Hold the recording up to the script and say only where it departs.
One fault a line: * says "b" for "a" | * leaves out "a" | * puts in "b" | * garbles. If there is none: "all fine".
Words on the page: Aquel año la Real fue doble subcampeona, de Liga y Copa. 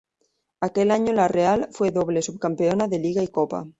all fine